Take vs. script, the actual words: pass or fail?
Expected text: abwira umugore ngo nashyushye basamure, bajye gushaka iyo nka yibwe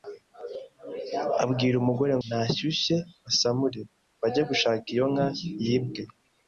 fail